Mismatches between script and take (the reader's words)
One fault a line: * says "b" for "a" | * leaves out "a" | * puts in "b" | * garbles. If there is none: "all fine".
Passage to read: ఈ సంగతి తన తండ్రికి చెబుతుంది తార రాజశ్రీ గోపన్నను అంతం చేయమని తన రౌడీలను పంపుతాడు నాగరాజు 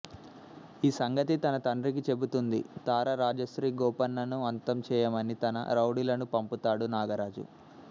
all fine